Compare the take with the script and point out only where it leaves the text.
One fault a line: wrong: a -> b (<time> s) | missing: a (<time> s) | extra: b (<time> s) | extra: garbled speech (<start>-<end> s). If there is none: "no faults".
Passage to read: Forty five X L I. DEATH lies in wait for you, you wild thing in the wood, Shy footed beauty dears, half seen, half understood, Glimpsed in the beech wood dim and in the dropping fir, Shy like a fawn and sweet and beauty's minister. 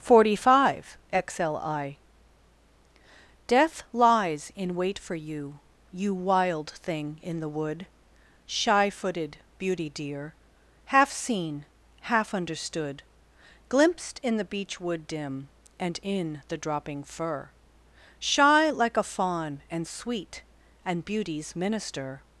wrong: dears -> dear (9.9 s)